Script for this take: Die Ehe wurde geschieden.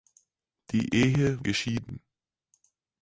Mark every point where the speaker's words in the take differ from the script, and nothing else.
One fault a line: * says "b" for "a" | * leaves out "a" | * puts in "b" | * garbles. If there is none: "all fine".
* leaves out "wurde"